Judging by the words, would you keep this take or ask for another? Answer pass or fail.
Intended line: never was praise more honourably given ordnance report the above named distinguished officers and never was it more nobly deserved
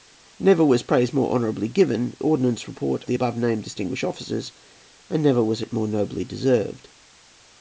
pass